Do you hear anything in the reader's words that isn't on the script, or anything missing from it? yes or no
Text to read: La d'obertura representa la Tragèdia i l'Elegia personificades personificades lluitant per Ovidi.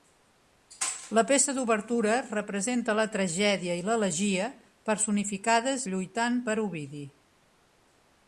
yes